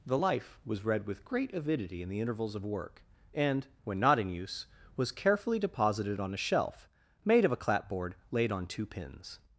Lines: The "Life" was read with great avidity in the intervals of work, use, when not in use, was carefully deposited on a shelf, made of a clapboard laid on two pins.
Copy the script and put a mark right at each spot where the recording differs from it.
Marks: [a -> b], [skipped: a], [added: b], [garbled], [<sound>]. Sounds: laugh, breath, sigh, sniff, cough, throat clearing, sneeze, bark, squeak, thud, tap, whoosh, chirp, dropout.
The "Life" was read with great avidity in the intervals of work, [use, -> and] when not in use, was carefully deposited on a shelf, made of a clapboard laid on two pins.